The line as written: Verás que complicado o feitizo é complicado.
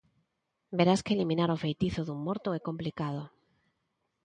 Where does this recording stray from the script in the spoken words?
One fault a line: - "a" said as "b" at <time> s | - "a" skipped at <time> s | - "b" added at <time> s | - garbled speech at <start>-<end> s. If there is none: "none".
- "complicado" said as "eliminar" at 1.1 s
- "dun morto" added at 2.0 s